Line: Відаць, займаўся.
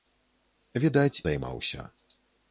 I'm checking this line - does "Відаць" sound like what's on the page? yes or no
yes